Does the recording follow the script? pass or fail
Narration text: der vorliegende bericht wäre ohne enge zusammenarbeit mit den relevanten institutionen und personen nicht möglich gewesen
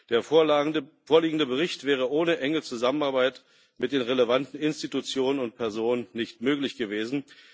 pass